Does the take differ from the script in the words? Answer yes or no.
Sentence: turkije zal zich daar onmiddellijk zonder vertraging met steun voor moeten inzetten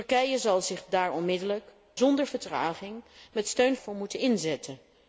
no